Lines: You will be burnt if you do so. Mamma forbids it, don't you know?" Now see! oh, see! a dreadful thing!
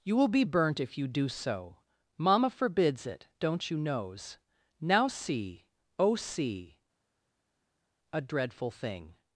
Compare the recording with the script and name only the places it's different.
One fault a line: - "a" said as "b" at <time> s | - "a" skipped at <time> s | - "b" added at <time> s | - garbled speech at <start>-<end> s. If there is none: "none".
- "know" said as "knows" at 3.8 s